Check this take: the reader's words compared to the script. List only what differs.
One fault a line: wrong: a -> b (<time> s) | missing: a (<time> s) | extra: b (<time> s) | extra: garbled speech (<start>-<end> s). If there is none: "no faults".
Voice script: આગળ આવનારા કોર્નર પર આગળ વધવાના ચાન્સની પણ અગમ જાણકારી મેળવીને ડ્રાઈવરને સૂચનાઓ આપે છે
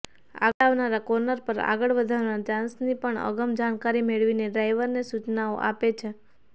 no faults